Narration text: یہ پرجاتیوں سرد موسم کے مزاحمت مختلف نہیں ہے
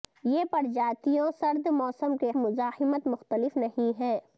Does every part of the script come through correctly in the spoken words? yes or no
yes